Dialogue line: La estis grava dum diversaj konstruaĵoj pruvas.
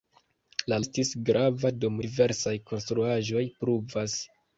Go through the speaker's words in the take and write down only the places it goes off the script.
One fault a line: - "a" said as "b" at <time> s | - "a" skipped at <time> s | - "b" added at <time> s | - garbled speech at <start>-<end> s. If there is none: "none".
none